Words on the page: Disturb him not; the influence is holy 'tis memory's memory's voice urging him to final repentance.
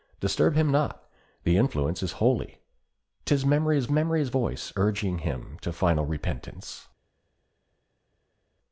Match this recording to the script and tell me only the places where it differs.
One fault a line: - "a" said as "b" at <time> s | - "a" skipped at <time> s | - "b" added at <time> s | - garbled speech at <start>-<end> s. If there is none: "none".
none